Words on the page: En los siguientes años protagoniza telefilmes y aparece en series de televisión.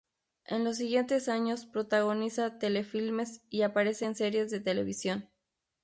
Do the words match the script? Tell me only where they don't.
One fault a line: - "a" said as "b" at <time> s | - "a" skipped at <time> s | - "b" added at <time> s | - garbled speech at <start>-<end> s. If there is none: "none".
none